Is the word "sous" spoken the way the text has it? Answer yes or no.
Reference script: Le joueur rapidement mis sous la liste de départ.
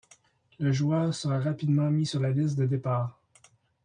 no